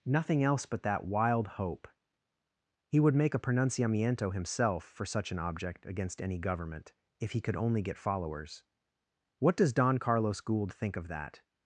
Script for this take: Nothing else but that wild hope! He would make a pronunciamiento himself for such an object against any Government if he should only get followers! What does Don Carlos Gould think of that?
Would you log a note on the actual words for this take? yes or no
yes